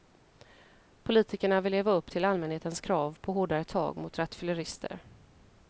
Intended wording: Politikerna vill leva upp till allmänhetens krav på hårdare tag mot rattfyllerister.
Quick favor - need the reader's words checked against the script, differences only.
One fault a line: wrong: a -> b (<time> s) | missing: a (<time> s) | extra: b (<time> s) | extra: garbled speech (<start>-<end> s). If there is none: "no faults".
no faults